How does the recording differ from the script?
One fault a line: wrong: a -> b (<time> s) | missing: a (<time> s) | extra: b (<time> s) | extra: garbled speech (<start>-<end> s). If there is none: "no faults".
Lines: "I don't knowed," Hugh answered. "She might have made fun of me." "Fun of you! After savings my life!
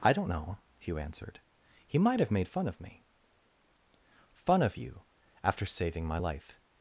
wrong: knowed -> know (0.3 s)
wrong: She -> He (1.9 s)
wrong: savings -> saving (5.7 s)